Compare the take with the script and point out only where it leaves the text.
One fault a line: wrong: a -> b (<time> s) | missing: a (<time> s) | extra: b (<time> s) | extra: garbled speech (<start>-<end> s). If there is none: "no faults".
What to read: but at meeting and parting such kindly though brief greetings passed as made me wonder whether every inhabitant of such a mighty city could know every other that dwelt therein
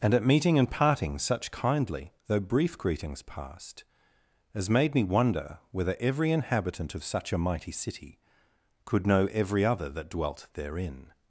wrong: but -> and (0.0 s)